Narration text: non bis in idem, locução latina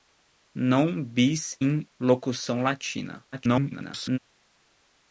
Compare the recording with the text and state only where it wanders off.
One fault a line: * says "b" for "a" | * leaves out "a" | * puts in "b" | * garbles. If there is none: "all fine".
* leaves out "idem"
* garbles